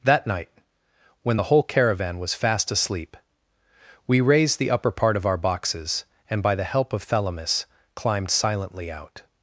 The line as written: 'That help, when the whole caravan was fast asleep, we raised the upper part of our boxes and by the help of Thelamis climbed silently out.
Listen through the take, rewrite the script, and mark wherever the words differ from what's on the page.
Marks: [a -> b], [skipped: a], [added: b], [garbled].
'That [help, -> night] when the whole caravan was fast asleep, we raised the upper part of our boxes and by the help of Thelamis climbed silently out.